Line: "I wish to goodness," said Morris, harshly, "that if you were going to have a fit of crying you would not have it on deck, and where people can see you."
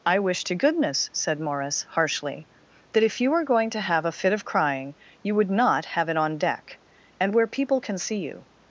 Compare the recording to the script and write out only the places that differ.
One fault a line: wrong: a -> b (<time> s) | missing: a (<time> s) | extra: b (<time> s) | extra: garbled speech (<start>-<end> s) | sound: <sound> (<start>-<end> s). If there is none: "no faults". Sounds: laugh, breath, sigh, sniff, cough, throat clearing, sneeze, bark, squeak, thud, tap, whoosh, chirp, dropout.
no faults